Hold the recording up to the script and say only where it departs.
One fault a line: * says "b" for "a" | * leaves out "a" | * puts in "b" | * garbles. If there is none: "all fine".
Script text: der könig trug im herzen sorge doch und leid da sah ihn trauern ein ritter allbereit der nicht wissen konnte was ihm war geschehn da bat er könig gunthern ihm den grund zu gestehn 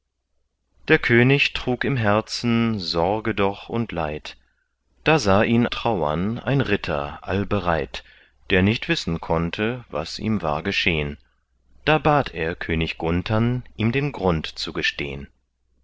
all fine